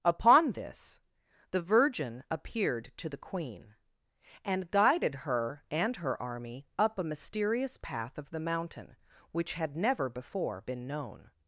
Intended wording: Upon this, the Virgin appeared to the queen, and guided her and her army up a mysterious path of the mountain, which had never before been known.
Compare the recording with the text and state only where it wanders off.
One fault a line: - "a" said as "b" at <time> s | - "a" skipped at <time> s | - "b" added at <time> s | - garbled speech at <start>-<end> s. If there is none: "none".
none